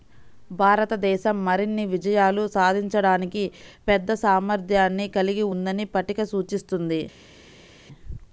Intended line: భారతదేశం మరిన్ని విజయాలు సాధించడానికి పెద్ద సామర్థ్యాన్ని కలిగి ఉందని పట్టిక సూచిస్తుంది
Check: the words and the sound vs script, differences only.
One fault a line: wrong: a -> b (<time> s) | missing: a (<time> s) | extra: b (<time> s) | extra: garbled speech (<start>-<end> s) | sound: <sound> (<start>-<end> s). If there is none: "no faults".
no faults